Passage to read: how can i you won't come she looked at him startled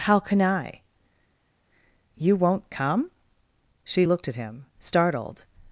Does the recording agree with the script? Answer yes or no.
yes